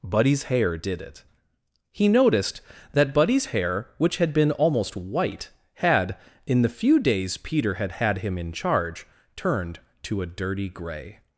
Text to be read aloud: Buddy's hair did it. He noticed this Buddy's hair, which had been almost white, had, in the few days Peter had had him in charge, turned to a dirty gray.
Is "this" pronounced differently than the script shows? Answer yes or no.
yes